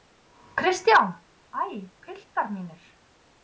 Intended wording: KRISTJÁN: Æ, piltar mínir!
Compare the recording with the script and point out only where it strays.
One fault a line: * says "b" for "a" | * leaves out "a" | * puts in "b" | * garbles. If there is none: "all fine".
all fine